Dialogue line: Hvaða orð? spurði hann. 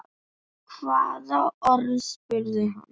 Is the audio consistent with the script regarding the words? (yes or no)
yes